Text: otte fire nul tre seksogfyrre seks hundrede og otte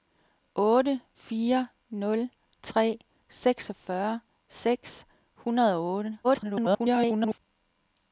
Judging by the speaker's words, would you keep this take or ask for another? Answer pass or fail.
fail